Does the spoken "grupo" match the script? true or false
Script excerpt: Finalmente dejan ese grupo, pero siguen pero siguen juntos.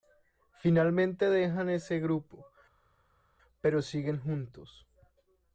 true